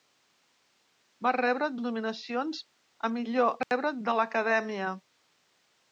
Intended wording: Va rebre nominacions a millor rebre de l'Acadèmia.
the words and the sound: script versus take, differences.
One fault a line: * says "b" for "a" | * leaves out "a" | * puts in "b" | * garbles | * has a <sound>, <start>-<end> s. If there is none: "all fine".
* has a dropout, 3.6-3.7 s